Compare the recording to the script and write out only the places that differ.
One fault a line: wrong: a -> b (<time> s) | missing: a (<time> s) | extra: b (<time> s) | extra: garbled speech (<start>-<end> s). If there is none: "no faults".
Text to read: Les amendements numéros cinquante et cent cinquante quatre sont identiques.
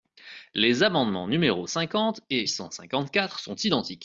no faults